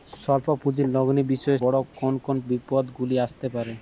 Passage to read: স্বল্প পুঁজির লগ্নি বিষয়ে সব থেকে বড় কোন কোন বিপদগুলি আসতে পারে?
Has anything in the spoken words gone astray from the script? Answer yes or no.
yes